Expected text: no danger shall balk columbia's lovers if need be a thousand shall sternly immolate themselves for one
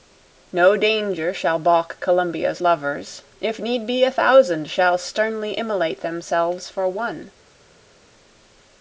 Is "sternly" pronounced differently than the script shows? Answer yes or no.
no